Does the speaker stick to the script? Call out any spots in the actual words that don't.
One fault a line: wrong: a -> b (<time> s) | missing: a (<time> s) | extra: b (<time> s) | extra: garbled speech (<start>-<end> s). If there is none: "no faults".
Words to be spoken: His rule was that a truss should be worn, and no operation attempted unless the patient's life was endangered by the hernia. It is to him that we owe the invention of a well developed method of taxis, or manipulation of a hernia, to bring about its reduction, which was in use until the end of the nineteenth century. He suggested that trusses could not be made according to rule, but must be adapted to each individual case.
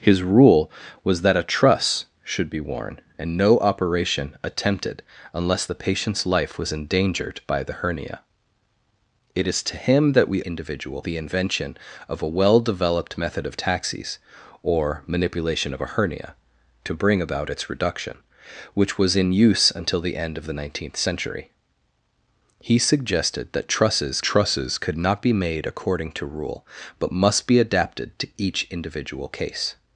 wrong: owe -> individual (10.4 s)
extra: trusses (24.2 s)